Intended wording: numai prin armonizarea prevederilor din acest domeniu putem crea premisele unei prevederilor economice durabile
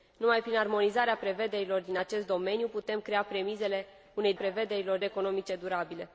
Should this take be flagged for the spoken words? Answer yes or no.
no